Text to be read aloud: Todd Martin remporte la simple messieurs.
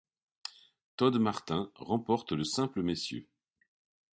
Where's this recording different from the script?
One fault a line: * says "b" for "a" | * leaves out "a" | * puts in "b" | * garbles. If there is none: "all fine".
* says "le" for "la"